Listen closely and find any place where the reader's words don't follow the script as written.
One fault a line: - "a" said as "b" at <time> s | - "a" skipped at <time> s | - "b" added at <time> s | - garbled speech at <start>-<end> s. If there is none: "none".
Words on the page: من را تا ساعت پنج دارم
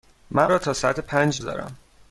none